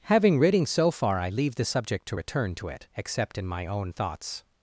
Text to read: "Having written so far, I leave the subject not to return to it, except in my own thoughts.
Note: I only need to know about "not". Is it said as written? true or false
false